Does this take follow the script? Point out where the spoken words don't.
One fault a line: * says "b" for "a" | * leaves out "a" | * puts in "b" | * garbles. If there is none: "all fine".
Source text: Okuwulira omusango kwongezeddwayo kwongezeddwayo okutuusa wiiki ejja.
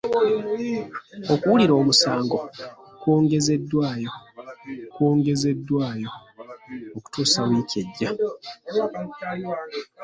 all fine